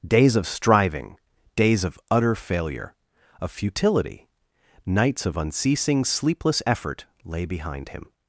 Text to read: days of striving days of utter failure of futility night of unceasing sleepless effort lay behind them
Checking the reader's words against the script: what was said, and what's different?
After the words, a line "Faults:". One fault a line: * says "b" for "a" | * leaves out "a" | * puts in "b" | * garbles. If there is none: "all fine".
days of striving days of utter failure of futility nights of unceasing sleepless effort lay behind him
Faults:
* says "nights" for "night"
* says "him" for "them"